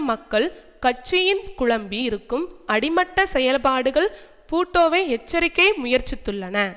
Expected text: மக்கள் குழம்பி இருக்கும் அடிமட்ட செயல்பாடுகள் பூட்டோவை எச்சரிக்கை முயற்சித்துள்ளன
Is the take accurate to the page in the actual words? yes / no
no